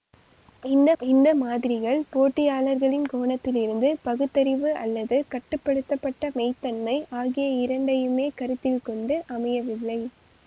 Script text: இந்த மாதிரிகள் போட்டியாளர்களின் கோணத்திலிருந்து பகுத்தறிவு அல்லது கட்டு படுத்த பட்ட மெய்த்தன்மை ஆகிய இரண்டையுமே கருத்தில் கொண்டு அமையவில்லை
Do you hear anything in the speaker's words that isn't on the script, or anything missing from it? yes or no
yes